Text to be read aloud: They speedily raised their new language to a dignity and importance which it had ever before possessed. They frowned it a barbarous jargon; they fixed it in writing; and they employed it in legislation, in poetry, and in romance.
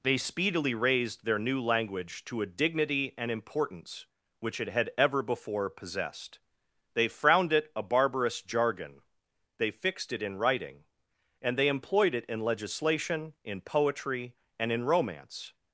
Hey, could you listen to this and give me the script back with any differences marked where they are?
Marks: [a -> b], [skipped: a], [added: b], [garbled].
They speedily raised their new language to a dignity and importance which it had ever before possessed. They frowned it a barbarous jargon; they fixed it in writing; and they employed it in legislation, in poetry, and in romance.